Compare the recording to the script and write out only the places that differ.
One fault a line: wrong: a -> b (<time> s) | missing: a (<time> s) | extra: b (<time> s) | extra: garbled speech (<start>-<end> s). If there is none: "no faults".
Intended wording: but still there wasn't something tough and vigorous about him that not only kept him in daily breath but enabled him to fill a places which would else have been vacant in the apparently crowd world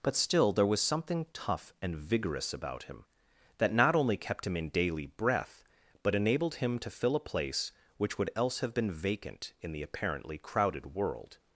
wrong: wasn't -> was (0.7 s)
wrong: places -> place (7.2 s)
wrong: crowd -> crowded (10.4 s)